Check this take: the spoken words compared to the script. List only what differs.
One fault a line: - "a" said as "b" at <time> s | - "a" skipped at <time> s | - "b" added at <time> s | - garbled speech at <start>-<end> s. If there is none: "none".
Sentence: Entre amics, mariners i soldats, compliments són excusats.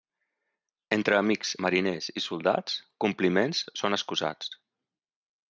none